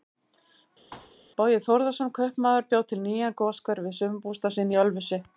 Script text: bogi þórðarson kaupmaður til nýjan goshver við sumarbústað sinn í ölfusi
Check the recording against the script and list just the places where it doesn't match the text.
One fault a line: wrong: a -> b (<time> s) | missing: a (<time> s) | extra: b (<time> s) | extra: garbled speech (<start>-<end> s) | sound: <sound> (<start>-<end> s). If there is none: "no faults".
sound: thud (0.9-1.2 s)
extra: bjó (2.7 s)